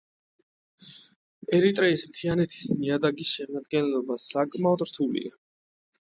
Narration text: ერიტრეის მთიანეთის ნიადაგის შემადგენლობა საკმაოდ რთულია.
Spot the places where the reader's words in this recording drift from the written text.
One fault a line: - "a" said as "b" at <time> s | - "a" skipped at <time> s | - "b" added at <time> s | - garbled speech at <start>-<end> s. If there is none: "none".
none